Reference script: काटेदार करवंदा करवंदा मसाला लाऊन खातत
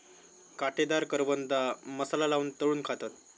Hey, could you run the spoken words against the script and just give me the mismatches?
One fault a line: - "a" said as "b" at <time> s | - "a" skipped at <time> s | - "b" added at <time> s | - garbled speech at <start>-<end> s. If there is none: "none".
- "करवंदा" skipped at 1.6 s
- "तळून" added at 2.6 s